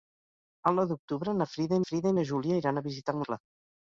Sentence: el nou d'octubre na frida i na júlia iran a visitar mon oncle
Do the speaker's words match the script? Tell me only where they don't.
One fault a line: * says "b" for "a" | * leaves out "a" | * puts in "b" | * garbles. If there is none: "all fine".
* puts in "frida"
* leaves out "mon"